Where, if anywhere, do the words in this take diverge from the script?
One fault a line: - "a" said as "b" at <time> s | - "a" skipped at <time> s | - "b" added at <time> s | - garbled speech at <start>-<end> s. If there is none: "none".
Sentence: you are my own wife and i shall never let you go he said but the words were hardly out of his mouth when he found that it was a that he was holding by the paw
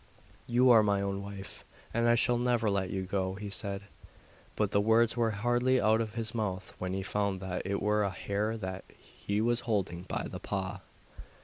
- "hare" added at 8.1 s